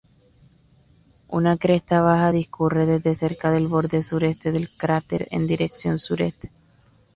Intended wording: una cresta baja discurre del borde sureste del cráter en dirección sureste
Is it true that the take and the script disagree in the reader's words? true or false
true